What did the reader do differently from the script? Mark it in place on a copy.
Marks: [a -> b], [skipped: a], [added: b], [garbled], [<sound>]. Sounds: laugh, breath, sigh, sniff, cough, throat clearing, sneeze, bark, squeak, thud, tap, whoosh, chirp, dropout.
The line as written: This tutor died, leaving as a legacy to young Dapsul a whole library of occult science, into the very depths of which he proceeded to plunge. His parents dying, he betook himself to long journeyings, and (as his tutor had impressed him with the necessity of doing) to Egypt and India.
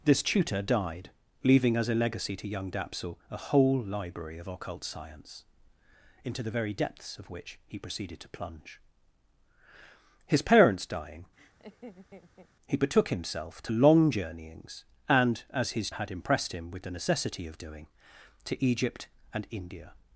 This tutor died, leaving as a legacy to young Dapsul a whole library of occult science, into the very depths of which he proceeded to plunge. His parents dying, [laugh] he betook himself to long journeyings, and (as his [skipped: tutor] had impressed him with the necessity of doing) to Egypt and India.